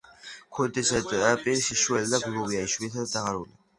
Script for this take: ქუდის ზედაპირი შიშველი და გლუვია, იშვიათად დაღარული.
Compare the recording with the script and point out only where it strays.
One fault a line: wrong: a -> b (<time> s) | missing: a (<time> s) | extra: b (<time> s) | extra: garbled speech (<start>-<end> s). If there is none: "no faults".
no faults